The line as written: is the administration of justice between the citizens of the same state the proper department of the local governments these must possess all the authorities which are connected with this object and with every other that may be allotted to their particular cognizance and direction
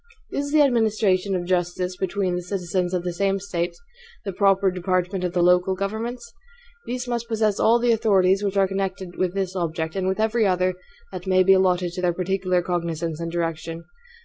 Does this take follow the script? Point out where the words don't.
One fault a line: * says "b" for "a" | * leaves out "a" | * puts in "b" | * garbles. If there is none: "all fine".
all fine